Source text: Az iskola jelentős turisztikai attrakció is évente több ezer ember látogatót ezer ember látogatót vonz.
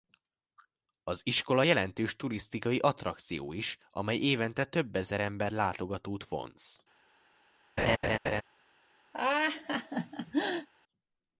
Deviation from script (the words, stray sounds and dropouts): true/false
true